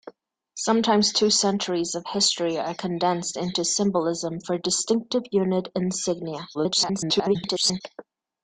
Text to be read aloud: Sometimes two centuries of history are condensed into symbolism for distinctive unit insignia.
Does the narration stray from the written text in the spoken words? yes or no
yes